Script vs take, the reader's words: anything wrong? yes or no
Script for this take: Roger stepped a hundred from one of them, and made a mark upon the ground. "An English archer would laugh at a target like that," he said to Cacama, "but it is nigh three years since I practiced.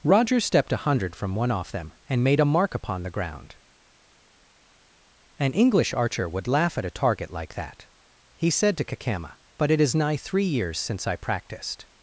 yes